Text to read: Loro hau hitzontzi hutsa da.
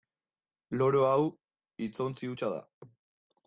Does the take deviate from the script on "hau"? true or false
false